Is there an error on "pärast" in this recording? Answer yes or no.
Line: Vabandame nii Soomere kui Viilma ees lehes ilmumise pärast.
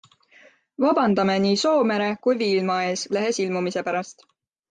no